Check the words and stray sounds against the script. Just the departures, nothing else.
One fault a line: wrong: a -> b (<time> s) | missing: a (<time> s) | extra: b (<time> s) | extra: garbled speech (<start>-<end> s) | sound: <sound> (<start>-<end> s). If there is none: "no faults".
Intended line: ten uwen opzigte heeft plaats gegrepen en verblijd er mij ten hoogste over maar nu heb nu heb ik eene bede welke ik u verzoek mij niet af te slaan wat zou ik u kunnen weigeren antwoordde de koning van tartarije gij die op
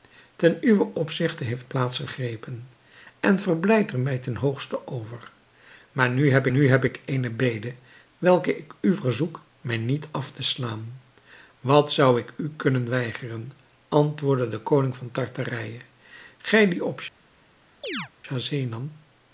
sound: chirp (17.8-18.1 s)